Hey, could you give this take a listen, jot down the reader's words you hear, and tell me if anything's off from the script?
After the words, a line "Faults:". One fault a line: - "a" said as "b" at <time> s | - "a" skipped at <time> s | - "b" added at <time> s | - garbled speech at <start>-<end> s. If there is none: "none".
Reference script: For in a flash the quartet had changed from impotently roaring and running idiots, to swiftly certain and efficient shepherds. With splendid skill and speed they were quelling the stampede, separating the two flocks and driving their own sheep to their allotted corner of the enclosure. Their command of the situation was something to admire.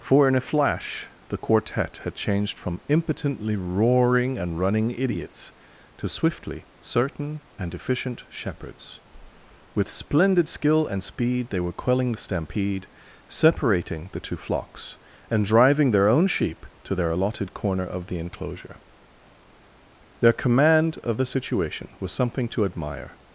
For in a flash the quartet had changed from impotently roaring and running idiots, to swiftly certain and efficient shepherds. With splendid skill and speed they were quelling the stampede, separating the two flocks and driving their own sheep to their allotted corner of the enclosure. Their command of the situation was something to admire.
Faults:
none